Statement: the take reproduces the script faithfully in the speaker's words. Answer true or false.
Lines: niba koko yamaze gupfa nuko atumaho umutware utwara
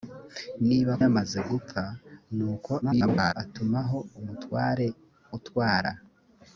false